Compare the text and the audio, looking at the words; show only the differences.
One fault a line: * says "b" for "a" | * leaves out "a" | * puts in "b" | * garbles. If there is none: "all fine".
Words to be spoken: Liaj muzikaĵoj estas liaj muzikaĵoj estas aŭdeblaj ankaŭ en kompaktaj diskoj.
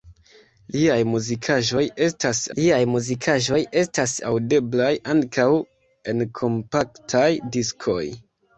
all fine